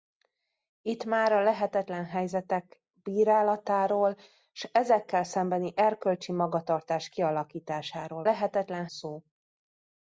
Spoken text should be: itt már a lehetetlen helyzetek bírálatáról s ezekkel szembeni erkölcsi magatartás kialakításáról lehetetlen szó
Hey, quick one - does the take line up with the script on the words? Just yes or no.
yes